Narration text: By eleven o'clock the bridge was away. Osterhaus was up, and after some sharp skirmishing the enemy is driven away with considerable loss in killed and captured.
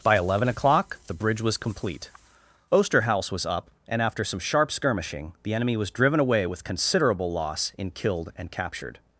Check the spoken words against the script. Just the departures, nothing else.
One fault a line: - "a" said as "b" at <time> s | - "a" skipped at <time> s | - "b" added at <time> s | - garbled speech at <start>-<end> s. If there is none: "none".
- "away" said as "complete" at 1.6 s
- "is" said as "was" at 5.7 s